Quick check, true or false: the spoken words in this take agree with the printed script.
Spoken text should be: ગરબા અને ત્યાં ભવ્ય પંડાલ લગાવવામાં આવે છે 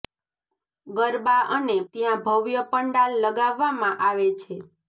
true